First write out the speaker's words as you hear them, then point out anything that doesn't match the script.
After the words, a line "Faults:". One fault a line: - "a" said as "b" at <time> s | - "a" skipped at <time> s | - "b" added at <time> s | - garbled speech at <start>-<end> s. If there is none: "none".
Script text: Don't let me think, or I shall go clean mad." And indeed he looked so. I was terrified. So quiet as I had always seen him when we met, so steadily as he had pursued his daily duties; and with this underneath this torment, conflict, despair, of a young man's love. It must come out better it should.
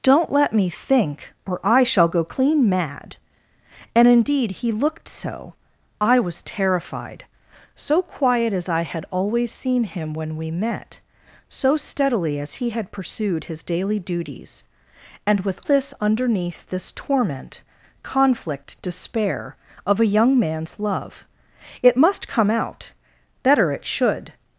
Don't let me think, or I shall go clean mad." And indeed he looked so. I was terrified. So quiet as I had always seen him when we met, so steadily as he had pursued his daily duties; and with this underneath this torment, conflict, despair, of a young man's love. It must come out better it should.
Faults:
none